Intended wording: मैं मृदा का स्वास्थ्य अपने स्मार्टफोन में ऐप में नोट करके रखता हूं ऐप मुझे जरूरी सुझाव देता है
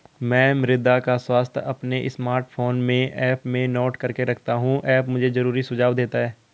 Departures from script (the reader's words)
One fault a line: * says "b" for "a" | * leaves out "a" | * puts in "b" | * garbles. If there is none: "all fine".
all fine